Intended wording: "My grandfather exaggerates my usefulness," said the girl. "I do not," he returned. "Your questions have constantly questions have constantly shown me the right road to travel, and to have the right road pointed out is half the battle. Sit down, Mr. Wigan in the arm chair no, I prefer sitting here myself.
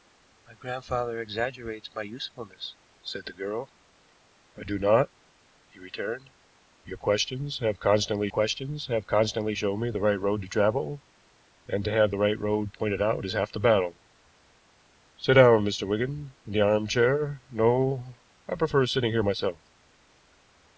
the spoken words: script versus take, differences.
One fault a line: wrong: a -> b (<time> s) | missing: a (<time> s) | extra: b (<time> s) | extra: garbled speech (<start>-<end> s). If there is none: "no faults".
no faults